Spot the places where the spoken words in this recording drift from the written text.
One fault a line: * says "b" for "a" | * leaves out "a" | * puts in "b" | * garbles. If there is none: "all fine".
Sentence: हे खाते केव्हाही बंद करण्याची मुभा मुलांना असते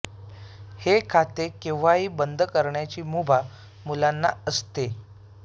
all fine